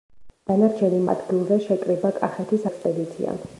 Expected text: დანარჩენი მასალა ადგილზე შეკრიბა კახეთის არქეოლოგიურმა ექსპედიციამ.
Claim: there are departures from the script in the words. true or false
true